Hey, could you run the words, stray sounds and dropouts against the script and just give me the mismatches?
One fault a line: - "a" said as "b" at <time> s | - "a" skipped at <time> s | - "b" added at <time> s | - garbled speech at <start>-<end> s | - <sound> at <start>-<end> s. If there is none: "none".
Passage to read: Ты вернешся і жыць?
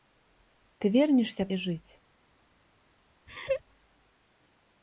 - laugh at 3.3-3.6 s